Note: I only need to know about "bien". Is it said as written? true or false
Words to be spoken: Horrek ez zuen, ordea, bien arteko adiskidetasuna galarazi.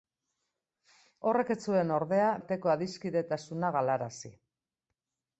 false